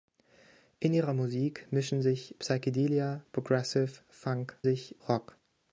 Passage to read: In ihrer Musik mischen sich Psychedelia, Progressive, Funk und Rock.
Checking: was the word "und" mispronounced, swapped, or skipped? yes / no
yes